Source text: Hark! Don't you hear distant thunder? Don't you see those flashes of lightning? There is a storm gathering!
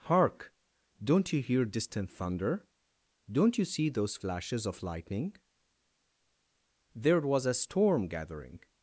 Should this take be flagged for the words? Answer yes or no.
yes